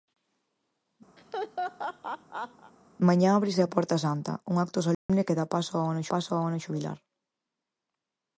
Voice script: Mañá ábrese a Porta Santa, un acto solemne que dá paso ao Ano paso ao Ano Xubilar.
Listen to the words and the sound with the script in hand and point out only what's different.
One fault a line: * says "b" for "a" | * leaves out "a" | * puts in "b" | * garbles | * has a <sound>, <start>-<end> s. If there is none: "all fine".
* has a laugh, 1.2-2.7 s
* has a dropout, 4.9-5.1 s